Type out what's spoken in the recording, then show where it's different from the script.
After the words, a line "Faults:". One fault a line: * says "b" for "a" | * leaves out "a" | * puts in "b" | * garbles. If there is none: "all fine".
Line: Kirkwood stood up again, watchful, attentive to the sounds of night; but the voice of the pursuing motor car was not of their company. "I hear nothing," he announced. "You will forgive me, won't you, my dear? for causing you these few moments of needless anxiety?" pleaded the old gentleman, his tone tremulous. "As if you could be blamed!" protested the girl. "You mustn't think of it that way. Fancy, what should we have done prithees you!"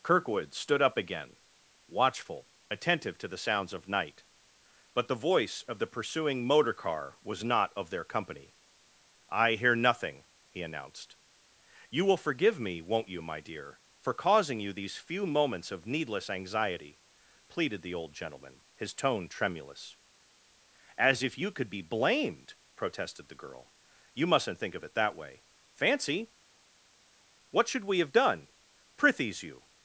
Kirkwood stood up again, watchful, attentive to the sounds of night; but the voice of the pursuing motor car was not of their company. "I hear nothing," he announced. "You will forgive me, won't you, my dear? for causing you these few moments of needless anxiety?" pleaded the old gentleman, his tone tremulous. "As if you could be blamed!" protested the girl. "You mustn't think of it that way. Fancy, what should we have done prithees you!"
Faults:
all fine